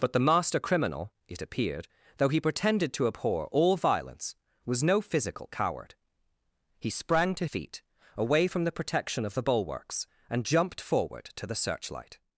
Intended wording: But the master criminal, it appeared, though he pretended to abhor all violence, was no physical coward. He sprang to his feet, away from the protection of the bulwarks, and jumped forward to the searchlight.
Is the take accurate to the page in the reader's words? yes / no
no